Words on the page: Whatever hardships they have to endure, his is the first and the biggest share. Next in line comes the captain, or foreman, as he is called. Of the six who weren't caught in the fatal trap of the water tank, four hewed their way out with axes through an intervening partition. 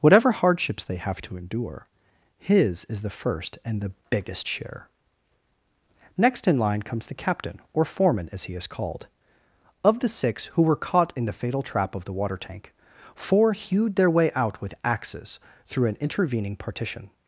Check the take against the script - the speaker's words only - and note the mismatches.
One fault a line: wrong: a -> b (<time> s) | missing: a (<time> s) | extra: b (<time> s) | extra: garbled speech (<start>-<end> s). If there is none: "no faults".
wrong: weren't -> were (10.6 s)